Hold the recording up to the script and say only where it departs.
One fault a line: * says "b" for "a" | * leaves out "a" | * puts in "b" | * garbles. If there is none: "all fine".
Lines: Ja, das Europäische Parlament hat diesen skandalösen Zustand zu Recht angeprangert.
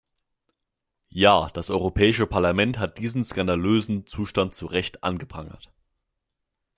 all fine